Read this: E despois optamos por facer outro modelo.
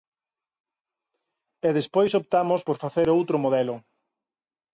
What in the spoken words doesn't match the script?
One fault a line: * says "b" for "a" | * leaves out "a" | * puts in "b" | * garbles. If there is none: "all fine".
all fine